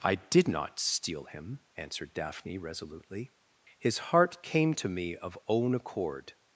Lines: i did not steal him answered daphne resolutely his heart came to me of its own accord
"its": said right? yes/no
no